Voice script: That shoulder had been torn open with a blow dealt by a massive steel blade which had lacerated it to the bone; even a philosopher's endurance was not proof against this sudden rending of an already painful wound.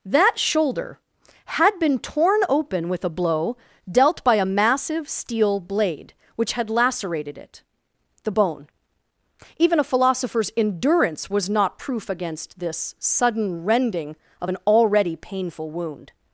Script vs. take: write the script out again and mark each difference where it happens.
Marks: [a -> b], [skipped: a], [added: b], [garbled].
That shoulder had been torn open with a blow dealt by a massive steel blade which had lacerated it [skipped: to] the bone; even a philosopher's endurance was not proof against this sudden rending of an already painful wound.